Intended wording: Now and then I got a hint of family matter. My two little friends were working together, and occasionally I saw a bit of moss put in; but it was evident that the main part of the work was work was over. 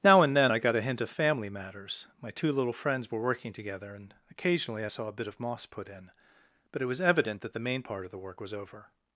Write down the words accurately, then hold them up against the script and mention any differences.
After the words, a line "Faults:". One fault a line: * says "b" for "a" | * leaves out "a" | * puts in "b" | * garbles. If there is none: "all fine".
Now and then I got a hint of family matters. My two little friends were working together, and occasionally I saw a bit of moss put in; but it was evident that the main part of the work was over.
Faults:
* says "matters" for "matter"
* leaves out "work was"